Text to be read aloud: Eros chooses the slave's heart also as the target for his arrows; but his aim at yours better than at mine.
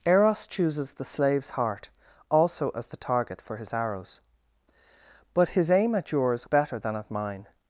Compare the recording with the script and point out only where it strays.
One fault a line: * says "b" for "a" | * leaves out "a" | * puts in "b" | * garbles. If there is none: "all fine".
all fine